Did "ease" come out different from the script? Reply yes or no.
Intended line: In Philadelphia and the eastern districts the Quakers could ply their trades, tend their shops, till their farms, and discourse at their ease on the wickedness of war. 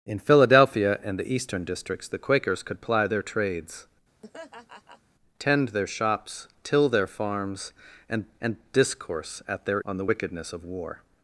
yes